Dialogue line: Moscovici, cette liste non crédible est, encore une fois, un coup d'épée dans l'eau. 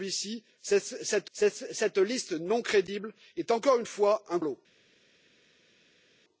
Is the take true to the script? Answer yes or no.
no